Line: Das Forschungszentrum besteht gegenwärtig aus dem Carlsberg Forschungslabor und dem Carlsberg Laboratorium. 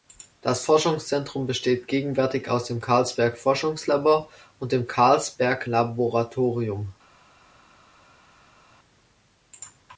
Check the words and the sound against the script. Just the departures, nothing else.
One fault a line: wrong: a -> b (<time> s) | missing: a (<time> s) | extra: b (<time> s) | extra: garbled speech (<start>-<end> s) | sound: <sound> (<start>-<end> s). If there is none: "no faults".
no faults